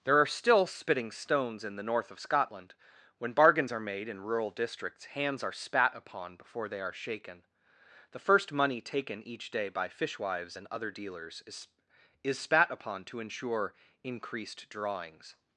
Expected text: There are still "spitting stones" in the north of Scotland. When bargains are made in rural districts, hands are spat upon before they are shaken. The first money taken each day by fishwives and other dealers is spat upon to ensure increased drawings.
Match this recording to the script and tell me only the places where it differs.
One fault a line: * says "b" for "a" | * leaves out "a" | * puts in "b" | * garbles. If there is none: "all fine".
* puts in "is"